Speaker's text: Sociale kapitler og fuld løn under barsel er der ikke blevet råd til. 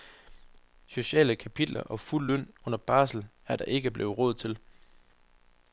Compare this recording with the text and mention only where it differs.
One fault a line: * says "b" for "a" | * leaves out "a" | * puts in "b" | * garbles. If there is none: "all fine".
all fine